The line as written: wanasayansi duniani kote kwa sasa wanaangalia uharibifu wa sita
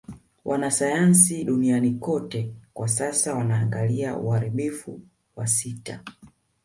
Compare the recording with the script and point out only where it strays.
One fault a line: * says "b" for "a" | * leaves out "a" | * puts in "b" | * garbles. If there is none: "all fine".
all fine